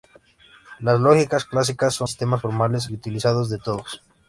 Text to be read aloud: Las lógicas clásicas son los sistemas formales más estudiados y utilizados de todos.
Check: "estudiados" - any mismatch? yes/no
yes